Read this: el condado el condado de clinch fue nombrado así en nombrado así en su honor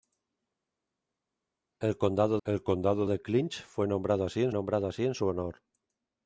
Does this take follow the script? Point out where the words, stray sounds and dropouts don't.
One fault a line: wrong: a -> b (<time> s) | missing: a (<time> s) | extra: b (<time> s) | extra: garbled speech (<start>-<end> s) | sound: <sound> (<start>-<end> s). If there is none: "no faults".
no faults